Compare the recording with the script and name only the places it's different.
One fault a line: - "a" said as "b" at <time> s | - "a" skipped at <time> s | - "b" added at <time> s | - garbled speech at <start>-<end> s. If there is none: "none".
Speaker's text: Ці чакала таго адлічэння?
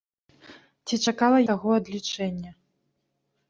none